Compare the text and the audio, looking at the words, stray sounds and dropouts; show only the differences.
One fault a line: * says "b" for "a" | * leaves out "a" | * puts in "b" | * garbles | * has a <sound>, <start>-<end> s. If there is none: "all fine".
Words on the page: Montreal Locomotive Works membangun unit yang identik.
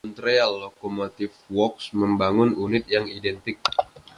all fine